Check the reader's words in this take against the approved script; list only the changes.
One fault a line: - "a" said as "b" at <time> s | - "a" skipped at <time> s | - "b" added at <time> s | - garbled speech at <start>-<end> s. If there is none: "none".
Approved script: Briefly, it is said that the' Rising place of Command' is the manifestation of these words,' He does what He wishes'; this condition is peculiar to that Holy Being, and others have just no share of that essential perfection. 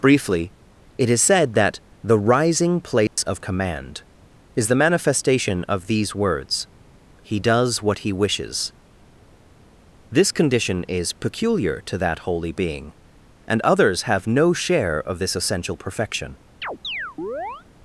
- "just" skipped at 14.3 s
- "that" said as "this" at 15.2 s